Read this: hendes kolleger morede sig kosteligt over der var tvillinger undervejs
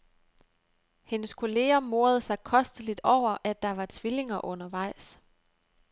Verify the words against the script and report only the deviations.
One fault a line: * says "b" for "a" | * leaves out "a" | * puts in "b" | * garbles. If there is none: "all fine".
* puts in "at"